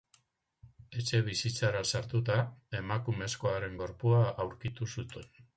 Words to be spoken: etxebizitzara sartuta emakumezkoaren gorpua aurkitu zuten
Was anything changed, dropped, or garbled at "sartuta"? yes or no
no